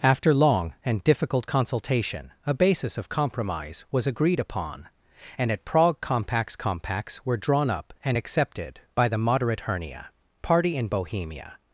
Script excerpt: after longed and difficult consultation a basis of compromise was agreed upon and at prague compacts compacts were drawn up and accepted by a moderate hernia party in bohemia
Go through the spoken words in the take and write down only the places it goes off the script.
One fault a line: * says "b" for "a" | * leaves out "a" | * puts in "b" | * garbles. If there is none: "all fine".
* says "long" for "longed"
* says "the" for "a"